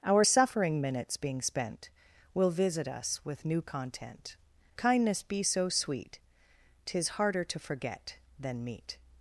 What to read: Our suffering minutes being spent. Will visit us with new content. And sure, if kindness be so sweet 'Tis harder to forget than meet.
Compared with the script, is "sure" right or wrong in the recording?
wrong